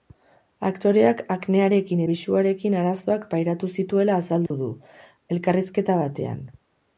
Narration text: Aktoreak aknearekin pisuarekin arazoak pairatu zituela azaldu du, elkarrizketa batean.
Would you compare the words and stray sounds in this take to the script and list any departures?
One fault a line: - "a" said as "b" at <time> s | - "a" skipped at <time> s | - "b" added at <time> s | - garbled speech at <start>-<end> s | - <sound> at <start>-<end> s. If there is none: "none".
- dropout at 4.5-4.5 s